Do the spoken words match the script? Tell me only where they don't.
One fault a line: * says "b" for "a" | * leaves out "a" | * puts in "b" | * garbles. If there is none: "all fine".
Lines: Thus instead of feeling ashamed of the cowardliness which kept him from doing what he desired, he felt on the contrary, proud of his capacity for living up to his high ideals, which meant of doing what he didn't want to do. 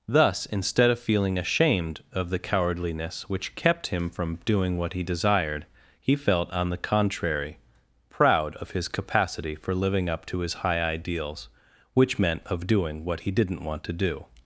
all fine